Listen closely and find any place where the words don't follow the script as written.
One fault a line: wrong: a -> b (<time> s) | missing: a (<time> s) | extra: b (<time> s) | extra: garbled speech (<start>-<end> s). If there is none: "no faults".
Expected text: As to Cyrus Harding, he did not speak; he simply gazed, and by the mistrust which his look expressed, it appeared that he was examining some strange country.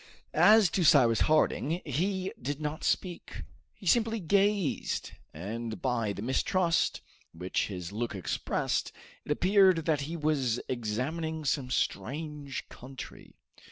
no faults